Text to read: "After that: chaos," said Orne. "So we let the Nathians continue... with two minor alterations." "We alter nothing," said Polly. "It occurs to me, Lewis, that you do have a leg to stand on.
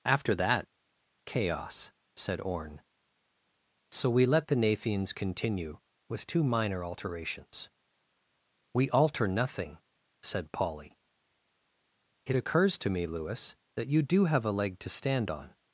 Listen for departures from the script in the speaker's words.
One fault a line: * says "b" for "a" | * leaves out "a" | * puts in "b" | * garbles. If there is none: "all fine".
all fine